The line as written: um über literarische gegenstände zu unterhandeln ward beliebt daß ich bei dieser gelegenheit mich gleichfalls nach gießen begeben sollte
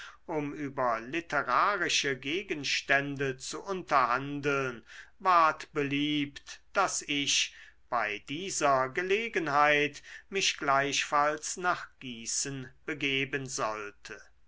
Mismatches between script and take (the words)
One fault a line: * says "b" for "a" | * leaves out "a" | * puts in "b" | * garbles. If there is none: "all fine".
all fine